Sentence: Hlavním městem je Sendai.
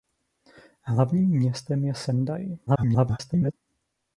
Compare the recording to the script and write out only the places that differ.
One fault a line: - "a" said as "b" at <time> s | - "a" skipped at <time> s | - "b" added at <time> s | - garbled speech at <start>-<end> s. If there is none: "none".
- garbled speech at 2.7-3.5 s